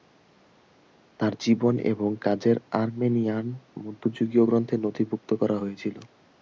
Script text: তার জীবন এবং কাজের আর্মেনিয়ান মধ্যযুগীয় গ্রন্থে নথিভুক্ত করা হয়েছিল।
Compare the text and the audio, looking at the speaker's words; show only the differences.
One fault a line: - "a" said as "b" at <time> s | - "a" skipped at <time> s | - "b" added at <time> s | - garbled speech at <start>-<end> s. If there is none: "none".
none